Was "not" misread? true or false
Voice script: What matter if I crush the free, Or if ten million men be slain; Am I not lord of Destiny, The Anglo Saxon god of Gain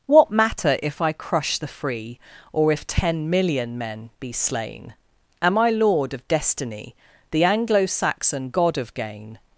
true